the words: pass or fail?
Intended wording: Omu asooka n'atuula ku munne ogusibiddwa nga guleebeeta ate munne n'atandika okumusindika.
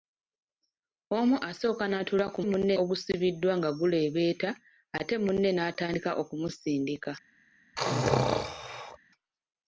pass